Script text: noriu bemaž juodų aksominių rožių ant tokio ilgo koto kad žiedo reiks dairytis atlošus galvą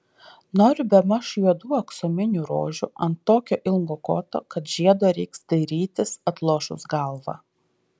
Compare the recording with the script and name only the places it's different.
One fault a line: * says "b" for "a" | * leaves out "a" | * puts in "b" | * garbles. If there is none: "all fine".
all fine